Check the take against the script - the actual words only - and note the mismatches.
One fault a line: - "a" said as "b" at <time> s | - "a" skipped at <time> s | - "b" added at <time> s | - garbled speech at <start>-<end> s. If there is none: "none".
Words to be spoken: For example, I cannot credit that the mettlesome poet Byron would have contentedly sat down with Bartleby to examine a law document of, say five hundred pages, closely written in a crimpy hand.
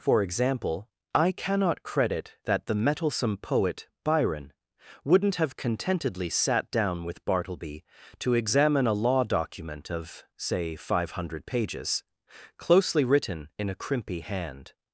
- "would" said as "wouldn't" at 5.0 s